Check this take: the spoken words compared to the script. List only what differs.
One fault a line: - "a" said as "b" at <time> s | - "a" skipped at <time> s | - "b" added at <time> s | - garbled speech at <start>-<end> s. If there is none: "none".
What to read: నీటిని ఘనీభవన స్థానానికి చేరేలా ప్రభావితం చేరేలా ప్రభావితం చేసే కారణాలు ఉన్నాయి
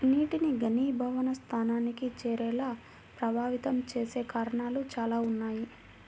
- "చేరేలా ప్రభావితం" skipped at 3.8 s
- "చాలా" added at 4.9 s